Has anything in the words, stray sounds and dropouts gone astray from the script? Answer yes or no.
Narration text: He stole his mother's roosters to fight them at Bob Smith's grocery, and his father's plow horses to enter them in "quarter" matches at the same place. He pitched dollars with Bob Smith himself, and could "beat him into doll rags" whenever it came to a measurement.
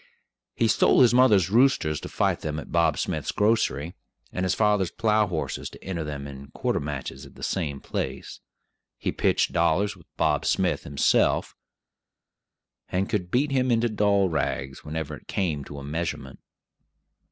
no